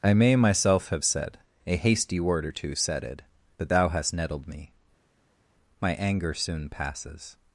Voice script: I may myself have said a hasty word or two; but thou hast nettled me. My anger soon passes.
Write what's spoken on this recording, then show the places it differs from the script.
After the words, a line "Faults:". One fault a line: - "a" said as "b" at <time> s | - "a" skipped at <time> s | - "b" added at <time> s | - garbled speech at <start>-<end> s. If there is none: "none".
I may myself have said a hasty word or two; said it but thou hast nettled me. My anger soon passes.
Faults:
- "said it" added at 2.8 s